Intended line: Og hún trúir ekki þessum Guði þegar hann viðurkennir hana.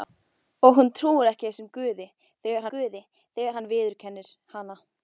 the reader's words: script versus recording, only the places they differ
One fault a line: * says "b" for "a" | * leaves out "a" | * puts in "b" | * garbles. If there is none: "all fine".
* puts in "Guði þegar"